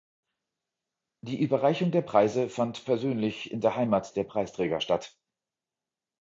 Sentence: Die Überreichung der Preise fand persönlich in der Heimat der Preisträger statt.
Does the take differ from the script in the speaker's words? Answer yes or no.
no